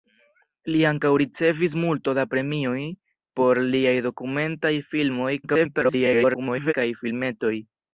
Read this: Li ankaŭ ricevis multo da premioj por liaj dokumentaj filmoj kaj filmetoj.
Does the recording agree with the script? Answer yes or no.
no